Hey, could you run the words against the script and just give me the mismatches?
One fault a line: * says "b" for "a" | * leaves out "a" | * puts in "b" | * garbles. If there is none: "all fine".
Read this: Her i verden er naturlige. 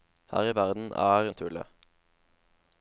all fine